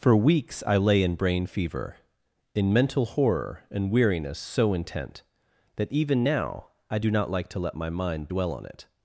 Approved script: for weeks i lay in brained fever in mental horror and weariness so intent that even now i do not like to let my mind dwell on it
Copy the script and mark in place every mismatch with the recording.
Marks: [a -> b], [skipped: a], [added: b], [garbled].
for weeks i lay in [brained -> brain] fever in mental horror and weariness so intent that even now i do not like to let my mind dwell on it